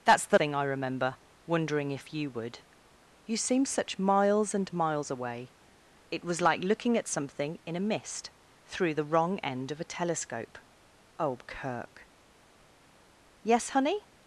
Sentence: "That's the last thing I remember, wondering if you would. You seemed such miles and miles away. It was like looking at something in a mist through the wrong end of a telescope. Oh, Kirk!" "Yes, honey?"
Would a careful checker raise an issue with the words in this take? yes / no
yes